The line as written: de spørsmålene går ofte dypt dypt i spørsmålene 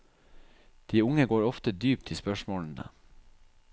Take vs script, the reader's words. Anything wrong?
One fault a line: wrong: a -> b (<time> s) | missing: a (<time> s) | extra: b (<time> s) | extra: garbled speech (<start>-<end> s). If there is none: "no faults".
wrong: spørsmålene -> unge (1.0 s)
missing: dypt (2.1 s)